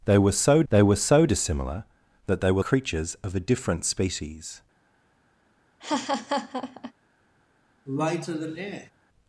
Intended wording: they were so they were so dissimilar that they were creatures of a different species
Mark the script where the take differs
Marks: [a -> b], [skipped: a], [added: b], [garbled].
they were so they were so dissimilar that they were creatures of a different species